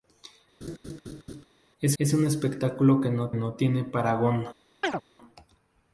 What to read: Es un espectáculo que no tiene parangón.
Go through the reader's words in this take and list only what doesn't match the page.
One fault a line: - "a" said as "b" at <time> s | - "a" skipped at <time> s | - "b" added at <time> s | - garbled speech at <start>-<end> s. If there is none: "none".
- "es" added at 2.0 s
- "no" added at 3.3 s